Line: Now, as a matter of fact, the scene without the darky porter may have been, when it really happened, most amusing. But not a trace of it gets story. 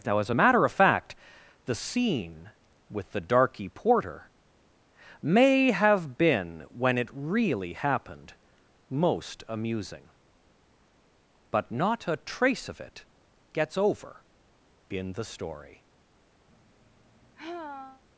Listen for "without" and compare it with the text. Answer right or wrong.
wrong